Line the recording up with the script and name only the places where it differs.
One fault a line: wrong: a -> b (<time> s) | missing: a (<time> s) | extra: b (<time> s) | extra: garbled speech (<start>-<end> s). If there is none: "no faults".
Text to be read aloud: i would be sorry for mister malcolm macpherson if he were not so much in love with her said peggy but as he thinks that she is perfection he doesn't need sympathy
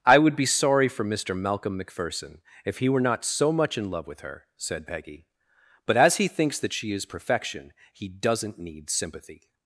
no faults